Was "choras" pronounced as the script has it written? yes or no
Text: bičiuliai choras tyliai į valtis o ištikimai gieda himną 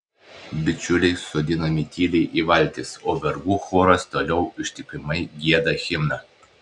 no